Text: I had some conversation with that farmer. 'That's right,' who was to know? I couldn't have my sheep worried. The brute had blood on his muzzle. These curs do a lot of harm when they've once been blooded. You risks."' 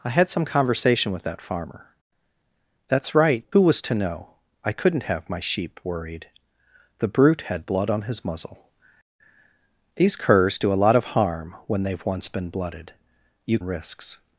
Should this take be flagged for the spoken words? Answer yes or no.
no